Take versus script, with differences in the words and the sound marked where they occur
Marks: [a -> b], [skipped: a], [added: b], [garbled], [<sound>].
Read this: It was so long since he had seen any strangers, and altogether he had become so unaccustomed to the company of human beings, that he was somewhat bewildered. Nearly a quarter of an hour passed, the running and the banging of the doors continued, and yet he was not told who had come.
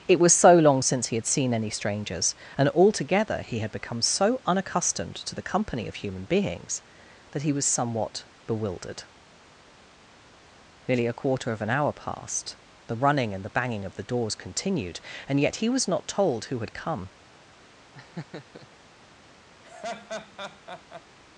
It was so long since he had seen any strangers, and altogether he had become so unaccustomed to the company of human beings, that he was somewhat bewildered. Nearly a quarter of an hour passed, the running and the banging of the doors continued, and yet he was not told who had come. [laugh] [laugh]